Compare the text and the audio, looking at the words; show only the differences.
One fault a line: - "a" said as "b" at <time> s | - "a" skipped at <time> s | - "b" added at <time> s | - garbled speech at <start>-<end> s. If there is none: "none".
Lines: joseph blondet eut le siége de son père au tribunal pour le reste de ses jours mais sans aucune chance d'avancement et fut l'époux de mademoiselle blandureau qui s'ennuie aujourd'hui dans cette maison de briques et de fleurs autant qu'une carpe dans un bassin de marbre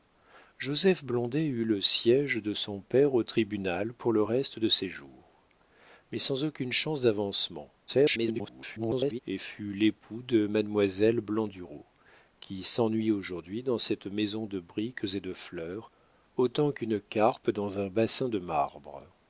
- garbled speech at 7.9-9.2 s